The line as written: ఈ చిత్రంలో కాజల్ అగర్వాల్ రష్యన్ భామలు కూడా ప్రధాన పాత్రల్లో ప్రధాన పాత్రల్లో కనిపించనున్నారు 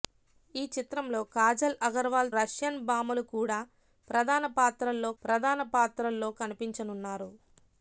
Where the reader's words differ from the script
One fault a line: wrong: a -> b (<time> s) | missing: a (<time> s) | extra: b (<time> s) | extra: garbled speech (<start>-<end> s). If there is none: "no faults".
no faults